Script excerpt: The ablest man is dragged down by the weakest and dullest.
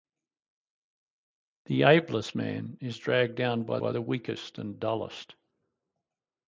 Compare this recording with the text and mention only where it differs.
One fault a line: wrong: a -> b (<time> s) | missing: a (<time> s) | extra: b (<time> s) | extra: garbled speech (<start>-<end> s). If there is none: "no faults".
extra: by (3.8 s)